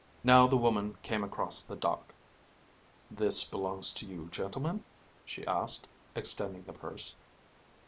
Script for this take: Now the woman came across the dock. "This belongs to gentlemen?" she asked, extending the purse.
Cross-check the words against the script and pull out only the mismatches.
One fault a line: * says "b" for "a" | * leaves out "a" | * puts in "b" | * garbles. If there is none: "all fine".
* puts in "you"